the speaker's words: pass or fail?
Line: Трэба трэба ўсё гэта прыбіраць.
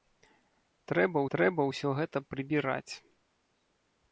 pass